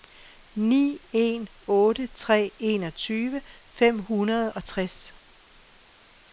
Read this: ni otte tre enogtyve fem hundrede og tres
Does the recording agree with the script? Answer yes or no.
no